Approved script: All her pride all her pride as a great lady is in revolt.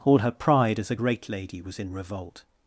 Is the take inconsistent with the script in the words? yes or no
yes